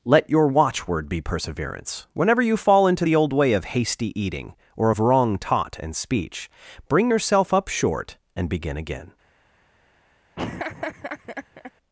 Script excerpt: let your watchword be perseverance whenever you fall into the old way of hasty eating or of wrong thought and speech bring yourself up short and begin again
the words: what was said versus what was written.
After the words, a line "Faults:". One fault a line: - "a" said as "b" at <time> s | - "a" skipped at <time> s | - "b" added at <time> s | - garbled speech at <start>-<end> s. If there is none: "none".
let your watchword be perseverance whenever you fall into the old way of hasty eating or of wrong taught and speech bring yourself up short and begin again
Faults:
- "thought" said as "taught" at 5.4 s